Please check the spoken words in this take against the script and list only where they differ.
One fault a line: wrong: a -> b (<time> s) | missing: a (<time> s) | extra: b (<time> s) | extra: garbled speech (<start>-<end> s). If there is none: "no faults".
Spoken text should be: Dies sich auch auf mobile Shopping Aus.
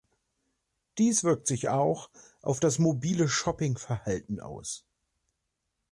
extra: wirkt (1.2 s)
extra: das (2.6 s)
extra: Verhalten (3.8 s)